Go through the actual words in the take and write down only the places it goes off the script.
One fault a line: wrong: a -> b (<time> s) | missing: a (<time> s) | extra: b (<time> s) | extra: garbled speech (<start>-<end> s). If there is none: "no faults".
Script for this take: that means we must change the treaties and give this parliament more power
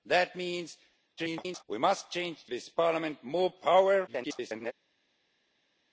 extra: garbled speech (1.2-1.6 s)
missing: treaties and give (2.5 s)
extra: garbled speech (4.1-4.7 s)